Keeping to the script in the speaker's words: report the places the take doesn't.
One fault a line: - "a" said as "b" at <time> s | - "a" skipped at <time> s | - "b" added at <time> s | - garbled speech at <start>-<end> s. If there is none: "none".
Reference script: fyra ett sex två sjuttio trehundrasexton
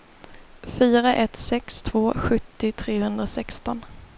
none